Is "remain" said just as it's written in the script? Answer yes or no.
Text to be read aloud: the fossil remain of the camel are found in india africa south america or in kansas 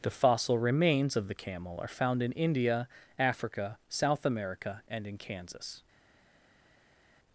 no